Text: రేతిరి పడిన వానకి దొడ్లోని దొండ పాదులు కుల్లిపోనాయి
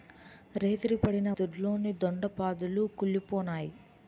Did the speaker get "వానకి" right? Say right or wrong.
wrong